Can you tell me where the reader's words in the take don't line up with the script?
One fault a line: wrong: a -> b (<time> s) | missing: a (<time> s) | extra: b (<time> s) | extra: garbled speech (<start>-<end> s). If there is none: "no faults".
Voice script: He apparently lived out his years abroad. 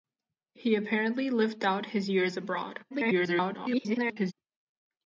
extra: garbled speech (2.9-4.3 s)